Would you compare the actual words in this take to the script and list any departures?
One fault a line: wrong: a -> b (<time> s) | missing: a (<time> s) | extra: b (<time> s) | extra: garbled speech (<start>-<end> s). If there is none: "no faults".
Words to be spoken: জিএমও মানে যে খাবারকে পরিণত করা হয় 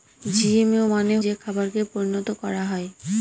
no faults